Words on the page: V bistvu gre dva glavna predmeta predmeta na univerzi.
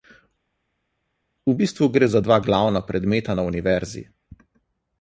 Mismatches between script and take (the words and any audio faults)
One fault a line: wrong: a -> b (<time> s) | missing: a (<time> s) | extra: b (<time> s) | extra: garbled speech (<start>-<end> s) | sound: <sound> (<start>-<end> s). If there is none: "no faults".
extra: za (2.1 s)
missing: predmeta (3.3 s)